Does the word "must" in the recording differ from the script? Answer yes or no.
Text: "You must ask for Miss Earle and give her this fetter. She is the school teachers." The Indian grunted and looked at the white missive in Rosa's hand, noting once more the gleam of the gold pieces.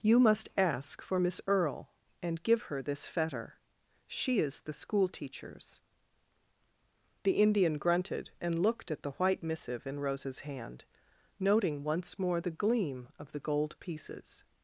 no